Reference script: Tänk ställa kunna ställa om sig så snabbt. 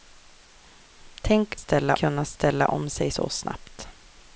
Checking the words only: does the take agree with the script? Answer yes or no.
yes